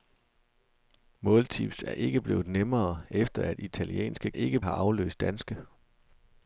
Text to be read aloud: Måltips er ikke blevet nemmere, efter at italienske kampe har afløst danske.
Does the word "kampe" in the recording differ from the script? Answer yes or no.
yes